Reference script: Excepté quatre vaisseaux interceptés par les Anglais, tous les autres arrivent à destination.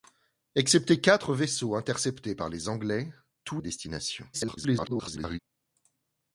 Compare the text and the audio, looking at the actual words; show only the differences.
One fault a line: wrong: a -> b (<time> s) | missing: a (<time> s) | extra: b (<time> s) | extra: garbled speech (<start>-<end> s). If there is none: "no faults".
missing: les autres arrivent (3.6 s)
extra: garbled speech (4.3-5.4 s)